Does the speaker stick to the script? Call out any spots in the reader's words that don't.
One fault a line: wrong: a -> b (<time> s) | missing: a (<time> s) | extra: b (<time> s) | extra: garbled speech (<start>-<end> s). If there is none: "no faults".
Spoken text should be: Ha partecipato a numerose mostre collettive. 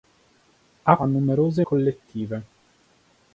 missing: partecipato (1.0 s)
missing: mostre (1.7 s)